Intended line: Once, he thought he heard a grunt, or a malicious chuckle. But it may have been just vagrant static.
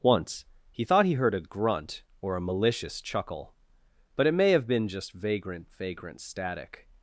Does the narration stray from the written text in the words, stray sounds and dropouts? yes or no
yes